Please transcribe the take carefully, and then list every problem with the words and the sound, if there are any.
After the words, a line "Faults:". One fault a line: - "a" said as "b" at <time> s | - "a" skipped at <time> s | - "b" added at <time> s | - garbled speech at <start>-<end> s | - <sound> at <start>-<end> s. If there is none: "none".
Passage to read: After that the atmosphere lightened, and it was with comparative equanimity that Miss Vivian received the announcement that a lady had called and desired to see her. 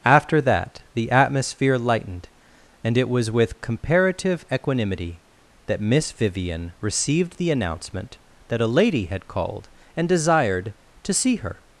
After that the atmosphere lightened, and it was with comparative equanimity that Miss Vivian received the announcement that a lady had called and desired to see her.
Faults:
none